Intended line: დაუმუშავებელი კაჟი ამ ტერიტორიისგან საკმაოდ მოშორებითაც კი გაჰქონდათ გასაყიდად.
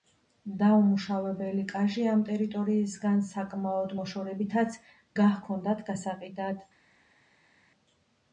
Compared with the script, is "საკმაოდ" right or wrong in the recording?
right